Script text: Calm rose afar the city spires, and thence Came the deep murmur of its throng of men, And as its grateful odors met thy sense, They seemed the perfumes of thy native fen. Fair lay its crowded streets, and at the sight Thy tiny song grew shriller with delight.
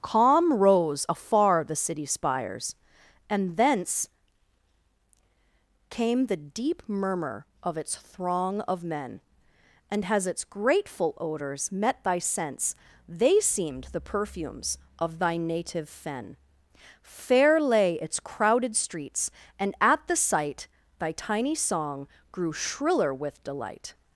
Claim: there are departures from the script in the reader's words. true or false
true